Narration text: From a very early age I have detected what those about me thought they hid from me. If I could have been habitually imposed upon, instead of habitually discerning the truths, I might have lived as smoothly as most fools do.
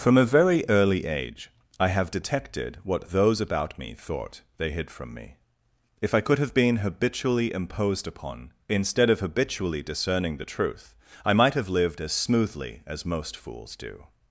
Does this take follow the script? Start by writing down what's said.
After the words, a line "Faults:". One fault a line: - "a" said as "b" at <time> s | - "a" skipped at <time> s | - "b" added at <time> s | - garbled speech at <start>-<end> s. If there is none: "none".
From a very early age I have detected what those about me thought they hid from me. If I could have been habitually imposed upon, instead of habitually discerning the truth, I might have lived as smoothly as most fools do.
Faults:
- "truths" said as "truth" at 10.4 s